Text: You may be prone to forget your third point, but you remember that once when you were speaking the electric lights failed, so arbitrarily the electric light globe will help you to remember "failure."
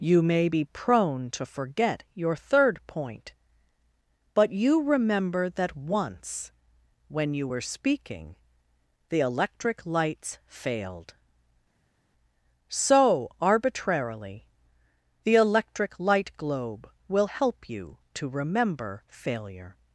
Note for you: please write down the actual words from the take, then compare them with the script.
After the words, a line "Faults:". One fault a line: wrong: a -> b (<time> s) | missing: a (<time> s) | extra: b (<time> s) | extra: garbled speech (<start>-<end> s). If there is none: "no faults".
You may be prone to forget your third point, but you remember that once when you were speaking the electric lights failed, so arbitrarily the electric light globe will help you to remember "failure."
Faults:
no faults